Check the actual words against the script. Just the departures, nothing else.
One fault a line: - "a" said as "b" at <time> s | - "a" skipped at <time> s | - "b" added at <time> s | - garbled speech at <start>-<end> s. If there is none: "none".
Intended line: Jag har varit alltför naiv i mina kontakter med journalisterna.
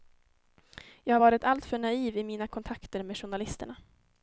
none